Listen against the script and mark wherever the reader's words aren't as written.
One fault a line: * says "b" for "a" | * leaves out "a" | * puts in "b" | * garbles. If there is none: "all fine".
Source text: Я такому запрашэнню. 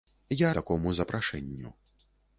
all fine